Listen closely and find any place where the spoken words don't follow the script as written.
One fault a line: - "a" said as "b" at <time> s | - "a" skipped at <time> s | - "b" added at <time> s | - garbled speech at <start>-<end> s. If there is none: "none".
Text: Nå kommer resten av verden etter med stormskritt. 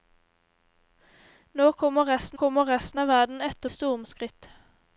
- "kommer resten" added at 2.3 s
- "med" skipped at 3.7 s